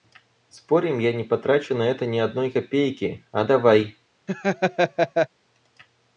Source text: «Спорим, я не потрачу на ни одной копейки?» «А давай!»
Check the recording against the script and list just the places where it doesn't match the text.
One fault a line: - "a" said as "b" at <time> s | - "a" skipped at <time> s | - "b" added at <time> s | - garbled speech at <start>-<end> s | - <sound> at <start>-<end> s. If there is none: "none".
- "это" added at 1.8 s
- laugh at 4.3-5.3 s